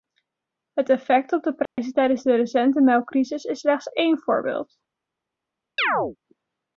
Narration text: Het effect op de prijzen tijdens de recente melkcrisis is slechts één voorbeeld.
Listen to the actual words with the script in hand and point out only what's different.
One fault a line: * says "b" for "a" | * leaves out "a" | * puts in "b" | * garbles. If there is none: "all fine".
all fine